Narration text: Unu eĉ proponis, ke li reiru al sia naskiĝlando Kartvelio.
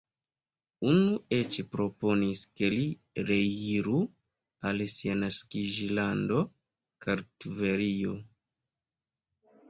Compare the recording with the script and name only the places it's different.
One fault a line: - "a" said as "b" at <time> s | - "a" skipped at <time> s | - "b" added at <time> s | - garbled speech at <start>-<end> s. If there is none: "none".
none